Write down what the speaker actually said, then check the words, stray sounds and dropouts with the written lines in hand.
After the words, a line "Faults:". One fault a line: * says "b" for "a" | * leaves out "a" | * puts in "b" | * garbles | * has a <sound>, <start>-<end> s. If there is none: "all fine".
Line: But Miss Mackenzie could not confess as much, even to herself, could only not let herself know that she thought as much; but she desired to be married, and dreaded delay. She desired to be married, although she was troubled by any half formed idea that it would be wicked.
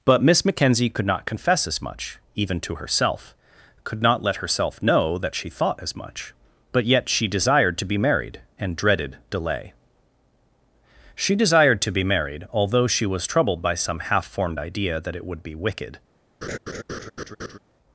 But Miss Mackenzie could not confess as much, even to herself, could not let herself know that she thought as much; but yet she desired to be married, and dreaded delay. She desired to be married, although she was troubled by some half formed idea that it would be wicked.
Faults:
* leaves out "only"
* puts in "yet"
* says "some" for "any"
* has a laugh, 16.4-17.6 s